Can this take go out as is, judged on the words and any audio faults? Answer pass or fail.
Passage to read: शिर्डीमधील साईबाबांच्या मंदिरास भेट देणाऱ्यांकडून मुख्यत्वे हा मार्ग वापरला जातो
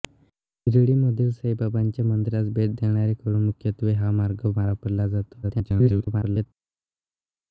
fail